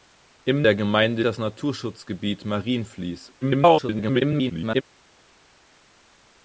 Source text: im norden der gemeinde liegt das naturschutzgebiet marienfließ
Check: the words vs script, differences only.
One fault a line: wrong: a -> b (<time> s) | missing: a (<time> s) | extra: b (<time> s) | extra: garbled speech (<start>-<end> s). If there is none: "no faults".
missing: norden (0.6 s)
missing: liegt (1.2 s)
extra: garbled speech (3.4-4.8 s)